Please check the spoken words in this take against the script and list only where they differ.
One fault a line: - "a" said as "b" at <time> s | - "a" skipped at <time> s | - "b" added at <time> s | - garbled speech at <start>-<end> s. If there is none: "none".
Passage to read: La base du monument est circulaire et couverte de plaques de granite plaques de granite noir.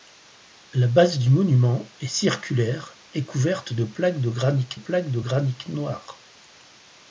none